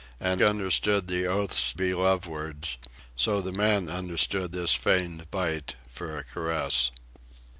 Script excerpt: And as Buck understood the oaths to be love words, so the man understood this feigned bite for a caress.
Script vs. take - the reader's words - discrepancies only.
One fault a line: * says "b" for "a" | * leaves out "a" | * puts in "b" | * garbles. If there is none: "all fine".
* leaves out "as Buck"
* leaves out "to"